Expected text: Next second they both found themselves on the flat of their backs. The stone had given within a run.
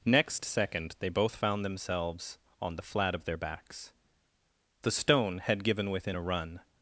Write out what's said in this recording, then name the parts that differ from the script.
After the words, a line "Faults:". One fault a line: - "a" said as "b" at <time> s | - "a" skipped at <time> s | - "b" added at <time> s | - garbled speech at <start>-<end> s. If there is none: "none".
Next second they both found themselves on the flat of their backs. The stone had given within a run.
Faults:
none